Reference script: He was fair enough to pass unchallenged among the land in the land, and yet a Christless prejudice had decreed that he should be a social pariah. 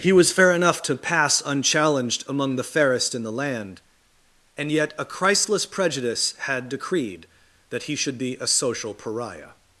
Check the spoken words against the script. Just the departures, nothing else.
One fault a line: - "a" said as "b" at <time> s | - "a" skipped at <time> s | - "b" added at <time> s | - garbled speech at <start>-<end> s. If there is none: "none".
- "land" said as "fairest" at 2.6 s